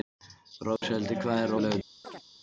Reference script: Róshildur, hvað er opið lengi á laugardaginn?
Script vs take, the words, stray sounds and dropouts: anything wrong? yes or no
yes